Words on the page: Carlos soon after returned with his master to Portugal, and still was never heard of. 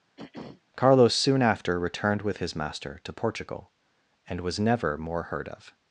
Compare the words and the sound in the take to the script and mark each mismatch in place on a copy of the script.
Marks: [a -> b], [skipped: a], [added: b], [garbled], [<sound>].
[throat clearing] Carlos soon after returned with his master to Portugal, and [skipped: still] was never [added: more] heard of.